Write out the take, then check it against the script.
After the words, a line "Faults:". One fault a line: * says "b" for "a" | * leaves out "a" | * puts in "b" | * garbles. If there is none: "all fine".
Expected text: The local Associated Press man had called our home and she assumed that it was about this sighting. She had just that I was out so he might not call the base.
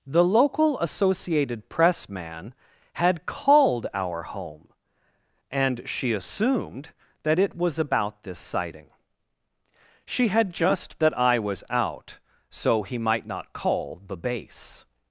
The local Associated Press man had called our home and she assumed that it was about this sighting. She had just that I was out so he might not call the base.
Faults:
all fine